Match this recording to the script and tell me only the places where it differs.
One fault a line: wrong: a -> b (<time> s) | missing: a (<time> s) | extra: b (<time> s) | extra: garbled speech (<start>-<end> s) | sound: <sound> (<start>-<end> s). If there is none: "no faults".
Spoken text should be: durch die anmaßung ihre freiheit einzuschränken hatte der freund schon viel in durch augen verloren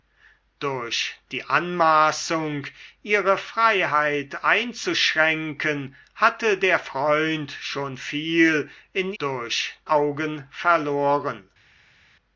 no faults